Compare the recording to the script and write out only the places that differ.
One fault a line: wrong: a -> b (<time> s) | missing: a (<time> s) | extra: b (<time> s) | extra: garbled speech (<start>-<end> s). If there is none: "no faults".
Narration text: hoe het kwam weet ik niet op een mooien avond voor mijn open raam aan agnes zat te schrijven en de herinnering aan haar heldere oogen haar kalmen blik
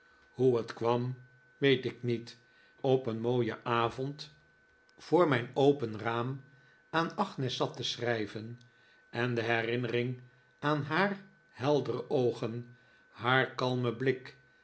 no faults